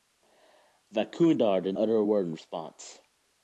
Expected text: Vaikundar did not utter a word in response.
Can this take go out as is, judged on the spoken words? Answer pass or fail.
fail